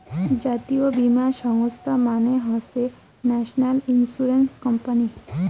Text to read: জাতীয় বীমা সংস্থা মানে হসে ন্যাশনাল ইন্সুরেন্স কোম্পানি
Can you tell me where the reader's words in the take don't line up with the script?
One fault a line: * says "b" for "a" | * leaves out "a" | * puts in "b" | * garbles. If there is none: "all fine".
all fine